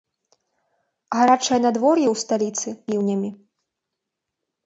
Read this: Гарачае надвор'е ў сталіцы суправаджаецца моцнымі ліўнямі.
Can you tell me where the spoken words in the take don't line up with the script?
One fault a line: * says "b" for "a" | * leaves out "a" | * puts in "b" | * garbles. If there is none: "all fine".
* leaves out "суправаджаецца моцнымі"